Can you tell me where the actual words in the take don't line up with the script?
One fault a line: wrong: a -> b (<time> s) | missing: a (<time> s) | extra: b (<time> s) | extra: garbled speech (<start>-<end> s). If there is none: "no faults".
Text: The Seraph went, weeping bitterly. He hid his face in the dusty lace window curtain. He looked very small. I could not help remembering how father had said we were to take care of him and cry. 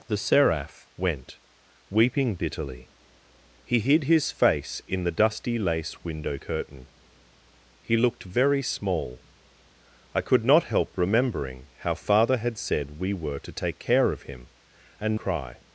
no faults